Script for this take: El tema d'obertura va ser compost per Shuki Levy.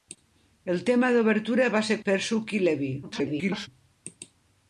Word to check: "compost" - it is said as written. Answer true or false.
false